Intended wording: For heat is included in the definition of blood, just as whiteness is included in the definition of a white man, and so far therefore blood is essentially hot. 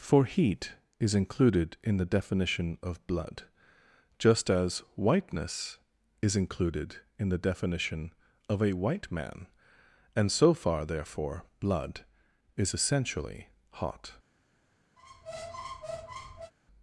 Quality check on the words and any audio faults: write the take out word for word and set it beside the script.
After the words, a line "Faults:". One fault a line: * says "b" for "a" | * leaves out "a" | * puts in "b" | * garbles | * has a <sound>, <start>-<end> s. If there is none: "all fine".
For heat is included in the definition of blood, just as whiteness is included in the definition of a white man, and so far therefore blood is essentially hot.
Faults:
* has a squeak, 15.0-16.5 s